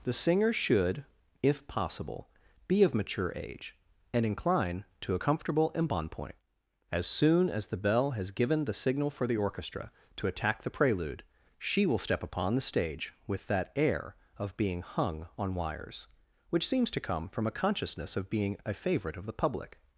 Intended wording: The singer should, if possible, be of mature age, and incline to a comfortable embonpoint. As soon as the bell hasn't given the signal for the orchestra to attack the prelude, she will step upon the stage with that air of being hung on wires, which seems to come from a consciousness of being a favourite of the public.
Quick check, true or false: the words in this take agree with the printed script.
false